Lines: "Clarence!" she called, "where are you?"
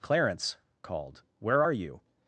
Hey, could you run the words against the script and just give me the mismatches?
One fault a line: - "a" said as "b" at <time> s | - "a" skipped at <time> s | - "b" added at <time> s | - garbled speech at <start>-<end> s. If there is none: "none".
- "she" skipped at 0.6 s